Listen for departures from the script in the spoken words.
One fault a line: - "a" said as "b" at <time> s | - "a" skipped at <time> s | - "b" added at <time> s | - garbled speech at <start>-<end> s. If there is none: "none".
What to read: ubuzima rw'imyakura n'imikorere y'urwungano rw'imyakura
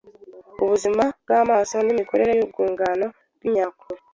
- "rw'imyakura" said as "bw'amaso" at 1.2 s